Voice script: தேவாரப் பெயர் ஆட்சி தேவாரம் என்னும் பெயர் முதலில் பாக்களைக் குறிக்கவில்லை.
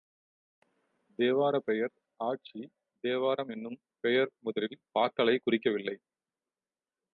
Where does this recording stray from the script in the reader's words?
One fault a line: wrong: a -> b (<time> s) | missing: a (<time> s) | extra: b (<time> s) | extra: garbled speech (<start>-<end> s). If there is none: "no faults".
no faults